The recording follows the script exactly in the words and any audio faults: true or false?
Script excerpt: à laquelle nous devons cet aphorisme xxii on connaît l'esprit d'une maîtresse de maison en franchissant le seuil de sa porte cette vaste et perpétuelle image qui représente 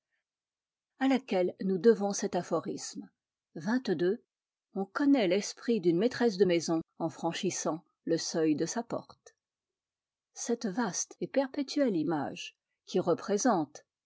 true